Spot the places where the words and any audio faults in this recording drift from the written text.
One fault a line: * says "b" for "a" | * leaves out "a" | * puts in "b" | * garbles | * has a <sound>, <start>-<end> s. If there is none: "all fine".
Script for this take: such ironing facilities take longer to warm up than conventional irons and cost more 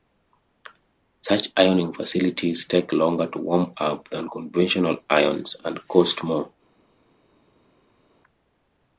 all fine